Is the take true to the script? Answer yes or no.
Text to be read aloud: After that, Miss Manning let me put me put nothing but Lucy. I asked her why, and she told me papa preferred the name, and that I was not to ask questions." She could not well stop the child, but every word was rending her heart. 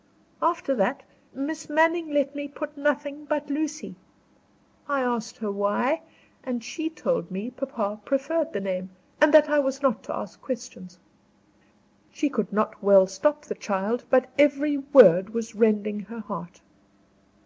no